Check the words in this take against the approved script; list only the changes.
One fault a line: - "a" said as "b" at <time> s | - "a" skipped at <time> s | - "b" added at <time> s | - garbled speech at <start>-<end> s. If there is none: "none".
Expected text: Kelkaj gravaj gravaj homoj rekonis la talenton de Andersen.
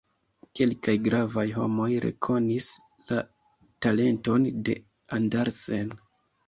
- "gravaj" skipped at 1.4 s